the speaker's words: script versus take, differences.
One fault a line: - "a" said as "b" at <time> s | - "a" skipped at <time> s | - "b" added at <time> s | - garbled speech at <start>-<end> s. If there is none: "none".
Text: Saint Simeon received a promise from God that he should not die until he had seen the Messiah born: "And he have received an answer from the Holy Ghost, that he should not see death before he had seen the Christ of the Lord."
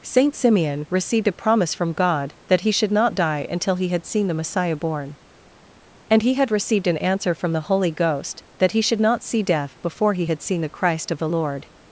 - "have" said as "had" at 6.3 s